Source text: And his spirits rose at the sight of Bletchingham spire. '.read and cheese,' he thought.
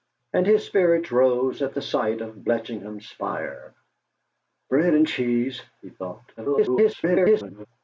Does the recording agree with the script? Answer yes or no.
no